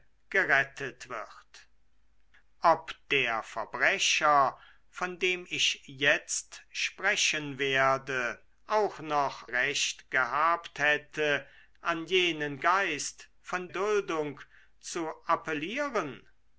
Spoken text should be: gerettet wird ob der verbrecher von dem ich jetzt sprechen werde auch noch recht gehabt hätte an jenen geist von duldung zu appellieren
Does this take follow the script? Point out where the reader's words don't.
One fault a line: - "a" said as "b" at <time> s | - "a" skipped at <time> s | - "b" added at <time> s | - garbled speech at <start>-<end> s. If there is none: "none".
none